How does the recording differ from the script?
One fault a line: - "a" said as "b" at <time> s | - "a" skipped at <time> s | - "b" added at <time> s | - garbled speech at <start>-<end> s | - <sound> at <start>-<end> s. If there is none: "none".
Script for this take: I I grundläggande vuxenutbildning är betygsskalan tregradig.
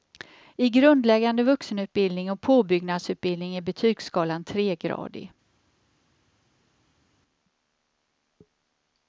- "I" skipped at 0.7 s
- "och påbyggnadsutbildning" added at 2.3 s